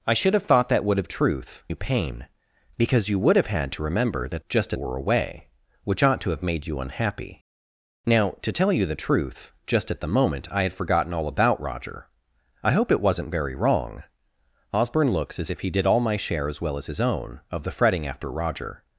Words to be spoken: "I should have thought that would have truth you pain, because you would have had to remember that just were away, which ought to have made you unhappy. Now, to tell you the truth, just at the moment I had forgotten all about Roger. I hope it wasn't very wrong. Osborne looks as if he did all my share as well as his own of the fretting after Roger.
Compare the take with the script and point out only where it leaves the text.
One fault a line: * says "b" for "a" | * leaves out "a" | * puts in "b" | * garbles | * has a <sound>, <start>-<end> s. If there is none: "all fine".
all fine